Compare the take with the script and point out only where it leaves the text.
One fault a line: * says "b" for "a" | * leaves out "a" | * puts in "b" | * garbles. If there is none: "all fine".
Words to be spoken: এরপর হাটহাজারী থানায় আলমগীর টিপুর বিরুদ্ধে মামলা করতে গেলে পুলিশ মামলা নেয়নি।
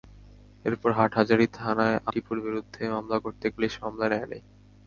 * leaves out "আলমগীর"
* leaves out "গেলে"